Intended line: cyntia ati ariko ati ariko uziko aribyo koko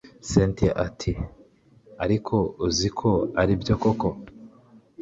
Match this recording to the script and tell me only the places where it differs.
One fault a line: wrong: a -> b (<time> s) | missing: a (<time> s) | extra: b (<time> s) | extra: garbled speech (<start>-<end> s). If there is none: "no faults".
missing: ati ariko (2.3 s)